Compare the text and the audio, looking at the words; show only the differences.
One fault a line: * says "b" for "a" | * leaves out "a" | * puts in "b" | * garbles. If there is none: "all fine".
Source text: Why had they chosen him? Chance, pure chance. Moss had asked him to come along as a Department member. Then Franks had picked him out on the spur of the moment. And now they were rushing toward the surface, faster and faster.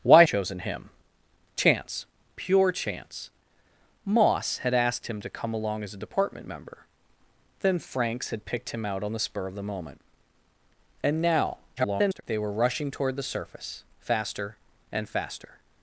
* leaves out "had they"
* garbles